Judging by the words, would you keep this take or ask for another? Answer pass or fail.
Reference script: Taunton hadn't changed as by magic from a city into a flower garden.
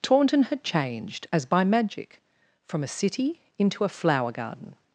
fail